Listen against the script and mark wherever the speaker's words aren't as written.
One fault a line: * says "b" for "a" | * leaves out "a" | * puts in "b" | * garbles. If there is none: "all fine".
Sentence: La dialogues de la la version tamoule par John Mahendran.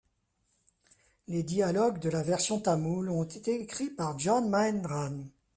* says "Les" for "La"
* leaves out "la"
* puts in "ont été écrits"